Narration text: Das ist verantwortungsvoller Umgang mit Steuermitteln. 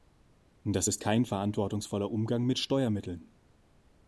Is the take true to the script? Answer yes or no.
no